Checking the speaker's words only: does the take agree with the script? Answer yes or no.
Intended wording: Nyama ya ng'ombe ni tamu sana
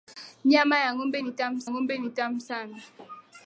no